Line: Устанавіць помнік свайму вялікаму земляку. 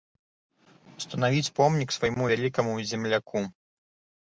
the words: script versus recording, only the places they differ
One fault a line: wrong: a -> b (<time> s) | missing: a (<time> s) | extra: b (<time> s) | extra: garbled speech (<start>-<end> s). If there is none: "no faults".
no faults